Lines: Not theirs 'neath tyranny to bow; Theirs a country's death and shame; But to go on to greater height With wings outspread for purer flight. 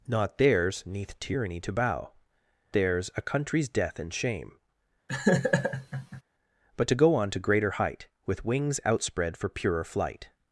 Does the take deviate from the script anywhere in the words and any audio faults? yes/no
yes